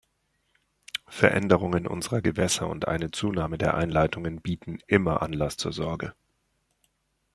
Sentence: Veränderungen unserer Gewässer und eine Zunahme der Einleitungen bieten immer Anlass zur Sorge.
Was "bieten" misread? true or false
false